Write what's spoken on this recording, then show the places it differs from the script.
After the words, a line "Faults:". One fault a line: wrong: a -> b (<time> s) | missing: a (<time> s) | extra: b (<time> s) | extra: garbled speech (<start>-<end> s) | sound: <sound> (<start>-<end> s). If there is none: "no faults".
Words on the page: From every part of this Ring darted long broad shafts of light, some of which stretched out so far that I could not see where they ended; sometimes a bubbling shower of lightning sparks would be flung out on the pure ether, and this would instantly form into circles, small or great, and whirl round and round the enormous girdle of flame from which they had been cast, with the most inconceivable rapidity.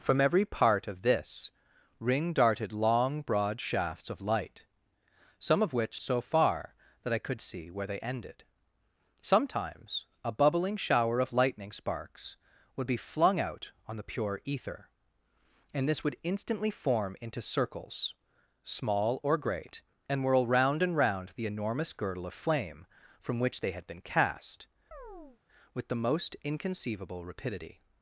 From every part of this Ring darted long broad shafts of light, some of which so far that I could see where they ended; sometimes a bubbling shower of lightning sparks would be flung out on the pure ether, and this would instantly form into circles, small or great, and whirl round and round the enormous girdle of flame from which they had been cast, with the most inconceivable rapidity.
Faults:
missing: stretched out (6.0 s)
missing: not (7.4 s)
sound: chirp (24.9-25.4 s)